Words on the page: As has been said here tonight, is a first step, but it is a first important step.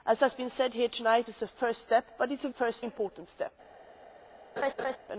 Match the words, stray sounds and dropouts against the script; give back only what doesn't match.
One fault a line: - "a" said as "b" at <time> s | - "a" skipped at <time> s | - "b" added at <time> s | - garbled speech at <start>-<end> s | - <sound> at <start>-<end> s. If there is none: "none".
- laugh at 4.6-5.0 s